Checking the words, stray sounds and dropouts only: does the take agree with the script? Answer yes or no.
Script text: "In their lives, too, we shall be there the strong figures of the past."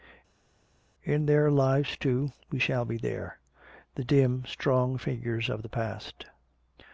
no